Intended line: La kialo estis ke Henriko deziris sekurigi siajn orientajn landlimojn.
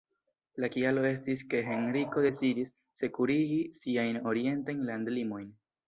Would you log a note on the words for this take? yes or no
no